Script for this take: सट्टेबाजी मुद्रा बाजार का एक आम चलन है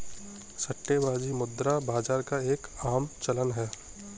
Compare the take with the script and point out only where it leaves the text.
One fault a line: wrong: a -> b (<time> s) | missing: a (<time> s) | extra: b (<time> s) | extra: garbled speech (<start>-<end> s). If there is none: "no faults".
no faults